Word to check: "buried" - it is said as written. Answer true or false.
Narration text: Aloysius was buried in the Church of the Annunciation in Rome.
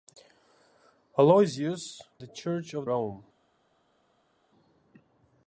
false